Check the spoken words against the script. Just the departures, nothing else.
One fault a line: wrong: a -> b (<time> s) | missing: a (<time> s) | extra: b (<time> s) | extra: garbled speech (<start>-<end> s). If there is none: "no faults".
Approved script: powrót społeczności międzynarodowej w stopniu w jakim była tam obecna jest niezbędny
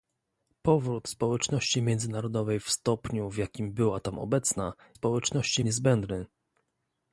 wrong: jest -> społeczności (4.9 s)